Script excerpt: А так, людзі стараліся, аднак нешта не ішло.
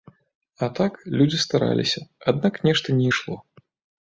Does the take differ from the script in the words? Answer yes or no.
no